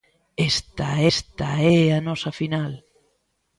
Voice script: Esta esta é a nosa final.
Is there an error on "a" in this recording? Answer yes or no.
no